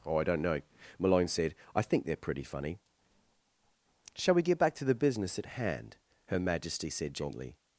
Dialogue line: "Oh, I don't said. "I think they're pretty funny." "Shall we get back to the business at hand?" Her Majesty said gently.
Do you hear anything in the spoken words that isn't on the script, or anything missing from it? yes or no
yes